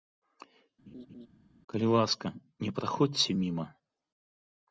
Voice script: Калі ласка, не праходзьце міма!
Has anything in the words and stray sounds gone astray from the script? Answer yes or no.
yes